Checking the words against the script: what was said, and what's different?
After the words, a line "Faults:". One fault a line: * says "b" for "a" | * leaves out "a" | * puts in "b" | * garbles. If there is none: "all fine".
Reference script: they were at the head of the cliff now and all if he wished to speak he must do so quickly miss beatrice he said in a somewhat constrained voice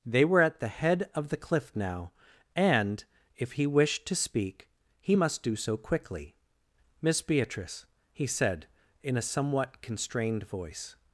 they were at the head of the cliff now and if he wished to speak he must do so quickly miss beatrice he said in a somewhat constrained voice
Faults:
* leaves out "all"